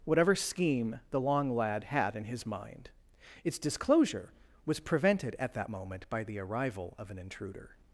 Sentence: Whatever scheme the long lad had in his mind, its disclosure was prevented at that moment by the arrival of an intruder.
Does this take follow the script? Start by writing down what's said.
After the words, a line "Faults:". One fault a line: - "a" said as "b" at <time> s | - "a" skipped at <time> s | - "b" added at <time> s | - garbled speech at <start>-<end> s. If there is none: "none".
Whatever scheme the long lad had in his mind, its disclosure was prevented at that moment by the arrival of an intruder.
Faults:
none